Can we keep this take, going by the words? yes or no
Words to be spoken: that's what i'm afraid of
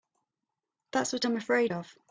yes